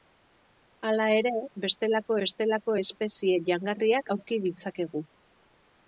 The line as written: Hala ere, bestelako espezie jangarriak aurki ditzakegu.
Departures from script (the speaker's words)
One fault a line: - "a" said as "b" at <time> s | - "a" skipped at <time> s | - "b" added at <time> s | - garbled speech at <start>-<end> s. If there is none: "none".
- "bestelako" added at 2.2 s